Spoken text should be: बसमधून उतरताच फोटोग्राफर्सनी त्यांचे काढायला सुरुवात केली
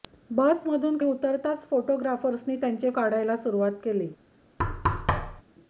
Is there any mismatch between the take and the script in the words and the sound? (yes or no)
yes